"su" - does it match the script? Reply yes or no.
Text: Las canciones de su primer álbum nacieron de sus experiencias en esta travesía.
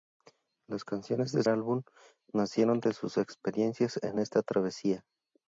no